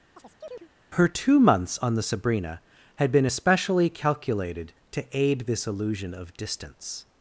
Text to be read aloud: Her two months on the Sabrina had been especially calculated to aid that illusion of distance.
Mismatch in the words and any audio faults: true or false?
true